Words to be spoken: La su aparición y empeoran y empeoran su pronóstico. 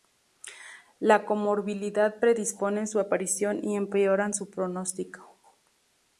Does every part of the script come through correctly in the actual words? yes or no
no